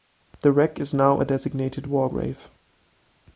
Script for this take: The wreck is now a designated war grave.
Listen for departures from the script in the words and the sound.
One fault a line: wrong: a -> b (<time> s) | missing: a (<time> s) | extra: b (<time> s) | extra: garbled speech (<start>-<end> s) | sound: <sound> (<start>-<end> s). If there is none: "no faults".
no faults